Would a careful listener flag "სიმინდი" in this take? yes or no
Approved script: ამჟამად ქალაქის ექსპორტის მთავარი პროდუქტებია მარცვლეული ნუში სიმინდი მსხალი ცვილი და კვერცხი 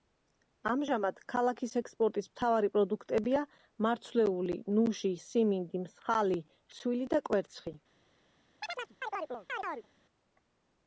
no